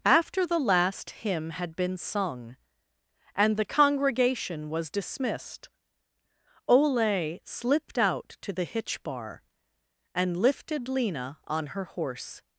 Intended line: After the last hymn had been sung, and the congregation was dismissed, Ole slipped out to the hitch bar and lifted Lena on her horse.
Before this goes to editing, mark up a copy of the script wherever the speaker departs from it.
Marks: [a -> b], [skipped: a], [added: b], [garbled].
After the last hymn had been sung, and the congregation was dismissed, Ole slipped out to the hitch bar and lifted Lena on her horse.